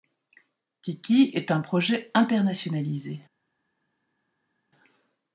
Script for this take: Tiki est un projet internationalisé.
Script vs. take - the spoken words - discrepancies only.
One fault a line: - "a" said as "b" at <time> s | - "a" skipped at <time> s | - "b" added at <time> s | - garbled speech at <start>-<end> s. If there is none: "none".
none